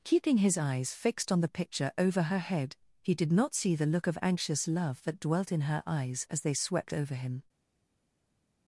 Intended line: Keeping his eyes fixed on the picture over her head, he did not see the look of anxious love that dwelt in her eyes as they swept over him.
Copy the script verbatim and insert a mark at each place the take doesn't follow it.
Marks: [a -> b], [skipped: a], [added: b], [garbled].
Keeping his eyes fixed on the picture over her head, he did not see the look of anxious love that dwelt in her eyes as they swept over him.